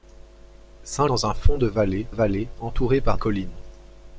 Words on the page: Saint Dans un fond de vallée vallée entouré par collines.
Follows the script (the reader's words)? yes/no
yes